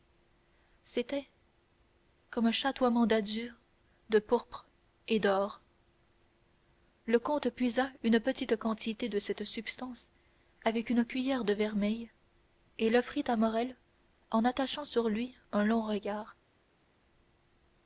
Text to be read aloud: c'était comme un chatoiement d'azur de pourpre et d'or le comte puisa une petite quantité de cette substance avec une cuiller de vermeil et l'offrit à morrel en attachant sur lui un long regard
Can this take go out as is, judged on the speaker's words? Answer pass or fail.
pass